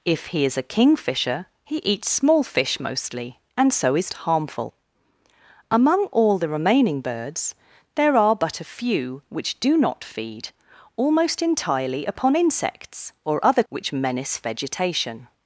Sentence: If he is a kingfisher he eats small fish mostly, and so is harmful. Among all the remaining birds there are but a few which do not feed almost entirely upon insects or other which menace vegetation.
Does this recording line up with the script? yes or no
yes